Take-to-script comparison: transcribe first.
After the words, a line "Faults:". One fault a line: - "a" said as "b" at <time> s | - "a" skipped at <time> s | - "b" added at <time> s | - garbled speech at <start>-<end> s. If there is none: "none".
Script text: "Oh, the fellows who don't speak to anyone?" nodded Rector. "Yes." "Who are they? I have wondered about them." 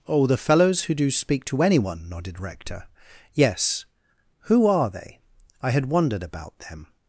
"Oh, the fellows who do speak to anyone?" nodded Rector. "Yes." "Who are they? I had wondered about them."
Faults:
- "don't" said as "do" at 0.9 s
- "have" said as "had" at 5.7 s